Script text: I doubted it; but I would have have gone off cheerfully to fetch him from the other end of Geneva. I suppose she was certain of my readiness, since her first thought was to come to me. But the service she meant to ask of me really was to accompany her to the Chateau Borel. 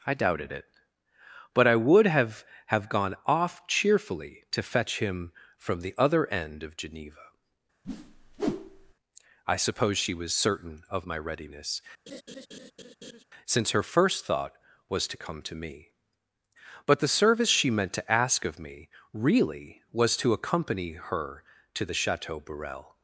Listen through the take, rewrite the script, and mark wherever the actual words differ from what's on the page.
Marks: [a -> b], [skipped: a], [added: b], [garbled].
I doubted it; but I would have have gone off cheerfully to fetch him from the other end of Geneva. I suppose she was certain of my readiness, since her first thought was to come to me. But the service she meant to ask of me really was to accompany her to the Chateau Borel.